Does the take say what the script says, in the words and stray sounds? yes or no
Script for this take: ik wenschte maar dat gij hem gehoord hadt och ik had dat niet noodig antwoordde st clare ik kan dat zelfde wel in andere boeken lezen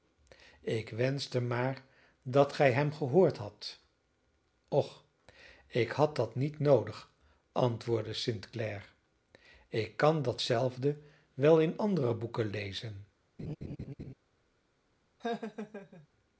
no